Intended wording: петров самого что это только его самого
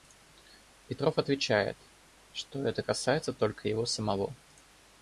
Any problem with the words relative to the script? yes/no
yes